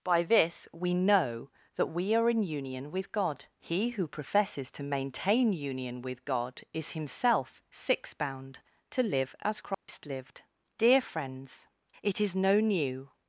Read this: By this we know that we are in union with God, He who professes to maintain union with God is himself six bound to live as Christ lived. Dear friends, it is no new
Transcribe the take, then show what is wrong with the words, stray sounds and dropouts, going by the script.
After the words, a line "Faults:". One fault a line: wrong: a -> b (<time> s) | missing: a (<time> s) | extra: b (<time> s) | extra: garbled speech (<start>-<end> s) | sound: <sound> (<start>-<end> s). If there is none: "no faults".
By this we know that we are in union with God, He who professes to maintain union with God is himself six bound to live as Christ lived. Dear friends, it is no new
Faults:
sound: dropout (9.7-9.9 s)